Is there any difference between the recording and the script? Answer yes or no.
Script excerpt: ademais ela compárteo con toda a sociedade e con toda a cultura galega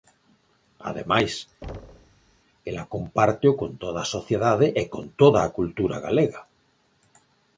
no